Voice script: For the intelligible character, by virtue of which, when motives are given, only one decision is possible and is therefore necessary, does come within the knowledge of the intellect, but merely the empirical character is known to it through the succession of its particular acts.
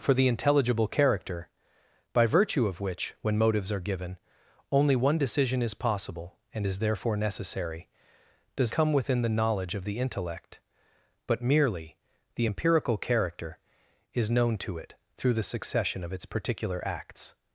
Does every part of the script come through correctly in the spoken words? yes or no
yes